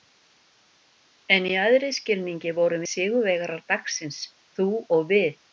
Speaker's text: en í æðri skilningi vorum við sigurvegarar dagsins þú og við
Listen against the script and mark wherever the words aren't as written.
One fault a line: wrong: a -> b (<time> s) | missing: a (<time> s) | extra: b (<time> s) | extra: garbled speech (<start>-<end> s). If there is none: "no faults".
missing: við (2.9 s)